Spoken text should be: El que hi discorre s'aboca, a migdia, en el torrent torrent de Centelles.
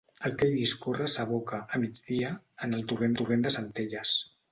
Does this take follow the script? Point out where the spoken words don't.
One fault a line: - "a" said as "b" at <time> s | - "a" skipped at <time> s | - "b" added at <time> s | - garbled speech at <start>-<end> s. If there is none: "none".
none